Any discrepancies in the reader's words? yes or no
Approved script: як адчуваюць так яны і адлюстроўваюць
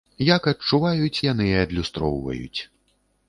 yes